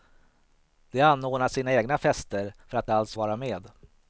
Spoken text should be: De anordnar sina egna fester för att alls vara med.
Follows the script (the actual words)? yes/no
yes